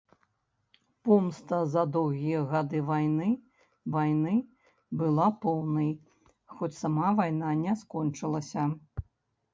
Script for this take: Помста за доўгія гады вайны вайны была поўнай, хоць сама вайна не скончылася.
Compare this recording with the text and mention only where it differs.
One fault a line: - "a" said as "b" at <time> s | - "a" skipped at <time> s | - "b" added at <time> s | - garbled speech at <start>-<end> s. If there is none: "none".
none